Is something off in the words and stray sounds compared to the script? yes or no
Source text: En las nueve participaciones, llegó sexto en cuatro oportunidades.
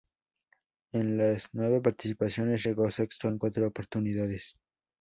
no